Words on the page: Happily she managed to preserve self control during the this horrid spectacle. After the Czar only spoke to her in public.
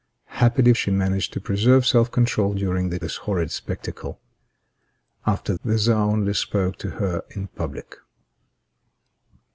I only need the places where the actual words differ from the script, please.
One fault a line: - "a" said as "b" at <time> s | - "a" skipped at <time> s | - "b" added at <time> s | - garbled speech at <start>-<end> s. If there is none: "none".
none